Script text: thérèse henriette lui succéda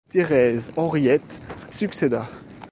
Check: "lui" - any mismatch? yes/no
yes